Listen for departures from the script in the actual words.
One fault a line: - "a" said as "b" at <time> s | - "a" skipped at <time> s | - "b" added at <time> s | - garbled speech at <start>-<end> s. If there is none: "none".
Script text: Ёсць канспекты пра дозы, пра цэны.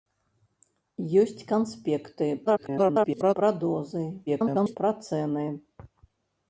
- garbled speech at 2.5-3.3 s
- garbled speech at 4.3-4.8 s